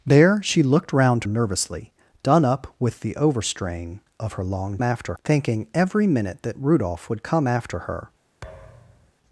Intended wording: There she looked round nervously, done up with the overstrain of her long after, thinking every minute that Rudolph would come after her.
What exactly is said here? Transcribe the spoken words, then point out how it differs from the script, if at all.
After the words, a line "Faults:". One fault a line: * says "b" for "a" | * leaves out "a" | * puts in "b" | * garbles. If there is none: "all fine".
There she looked round nervously, done up with the overstrain of her long after, thinking every minute that Rudolph would come after her.
Faults:
all fine